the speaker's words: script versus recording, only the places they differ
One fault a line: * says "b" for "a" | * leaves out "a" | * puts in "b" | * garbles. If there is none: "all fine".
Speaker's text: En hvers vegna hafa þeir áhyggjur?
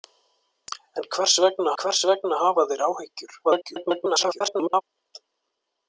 * puts in "hvers vegna"
* garbles